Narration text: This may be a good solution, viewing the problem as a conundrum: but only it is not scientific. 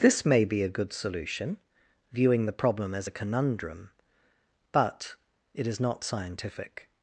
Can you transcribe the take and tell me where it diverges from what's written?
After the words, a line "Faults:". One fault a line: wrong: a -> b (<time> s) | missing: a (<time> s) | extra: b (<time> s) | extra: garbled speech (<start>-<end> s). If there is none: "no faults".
This may be a good solution, viewing the problem as a conundrum: but it is not scientific.
Faults:
missing: only (5.1 s)